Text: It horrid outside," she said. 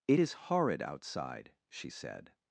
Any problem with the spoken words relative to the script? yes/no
yes